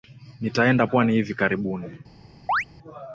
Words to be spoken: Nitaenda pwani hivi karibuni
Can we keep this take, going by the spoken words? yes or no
yes